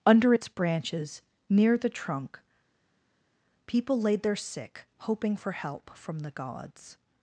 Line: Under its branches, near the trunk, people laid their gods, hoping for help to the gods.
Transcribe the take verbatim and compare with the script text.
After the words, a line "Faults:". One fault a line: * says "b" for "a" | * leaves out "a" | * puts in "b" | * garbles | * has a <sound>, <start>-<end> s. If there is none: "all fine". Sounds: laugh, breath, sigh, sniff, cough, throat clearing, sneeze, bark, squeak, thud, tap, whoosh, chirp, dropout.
Under its branches, near the trunk, people laid their sick, hoping for help from the gods.
Faults:
* says "sick" for "gods"
* says "from" for "to"